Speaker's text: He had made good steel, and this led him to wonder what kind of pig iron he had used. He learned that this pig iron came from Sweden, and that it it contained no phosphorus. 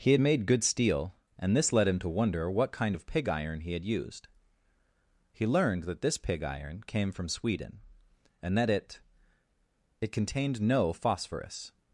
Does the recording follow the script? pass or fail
pass